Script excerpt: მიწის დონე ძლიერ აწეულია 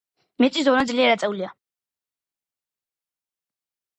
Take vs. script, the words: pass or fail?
pass